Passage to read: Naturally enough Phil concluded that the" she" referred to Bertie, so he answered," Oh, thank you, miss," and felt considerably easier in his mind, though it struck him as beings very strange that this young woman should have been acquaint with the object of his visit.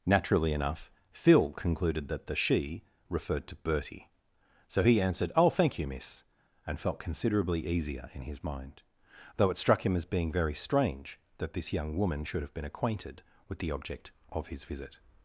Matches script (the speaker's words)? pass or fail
fail